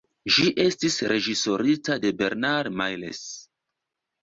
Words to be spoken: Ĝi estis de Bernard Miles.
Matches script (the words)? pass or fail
fail